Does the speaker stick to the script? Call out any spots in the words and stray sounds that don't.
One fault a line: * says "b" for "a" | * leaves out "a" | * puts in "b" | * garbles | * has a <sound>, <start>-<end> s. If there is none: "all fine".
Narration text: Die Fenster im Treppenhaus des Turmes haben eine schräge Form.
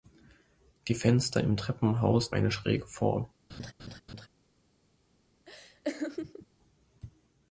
* leaves out "des Turmes haben"
* has a laugh, 3.5-4.3 s
* has a laugh, 5.5-6.5 s